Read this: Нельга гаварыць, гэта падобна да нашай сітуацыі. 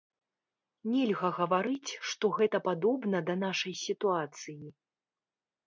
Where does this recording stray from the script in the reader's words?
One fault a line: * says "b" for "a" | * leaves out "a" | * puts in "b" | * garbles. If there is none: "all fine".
* puts in "што"